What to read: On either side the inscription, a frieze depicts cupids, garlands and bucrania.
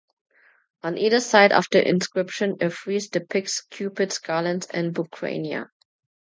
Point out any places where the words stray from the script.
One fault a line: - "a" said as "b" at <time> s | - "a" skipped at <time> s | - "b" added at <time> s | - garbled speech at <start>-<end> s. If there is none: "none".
- "of" added at 1.5 s